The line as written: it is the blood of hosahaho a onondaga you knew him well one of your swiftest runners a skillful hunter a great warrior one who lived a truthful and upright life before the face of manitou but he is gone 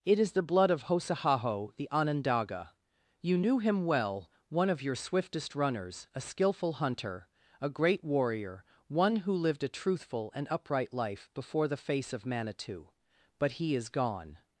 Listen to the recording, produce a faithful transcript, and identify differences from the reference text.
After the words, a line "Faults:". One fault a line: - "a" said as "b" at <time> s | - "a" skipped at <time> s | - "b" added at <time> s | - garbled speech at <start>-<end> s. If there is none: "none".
it is the blood of hosahaho the onondaga you knew him well one of your swiftest runners a skillful hunter a great warrior one who lived a truthful and upright life before the face of manitou but he is gone
Faults:
- "a" said as "the" at 1.8 s